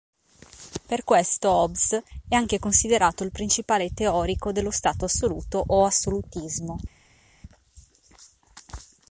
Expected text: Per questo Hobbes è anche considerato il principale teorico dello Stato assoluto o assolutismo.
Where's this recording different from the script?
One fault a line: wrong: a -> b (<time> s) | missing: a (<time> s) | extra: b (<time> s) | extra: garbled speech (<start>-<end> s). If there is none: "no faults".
no faults